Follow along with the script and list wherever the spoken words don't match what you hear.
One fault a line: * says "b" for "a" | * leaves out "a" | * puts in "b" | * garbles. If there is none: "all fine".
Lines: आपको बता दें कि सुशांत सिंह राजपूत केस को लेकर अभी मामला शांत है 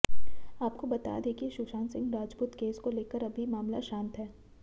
all fine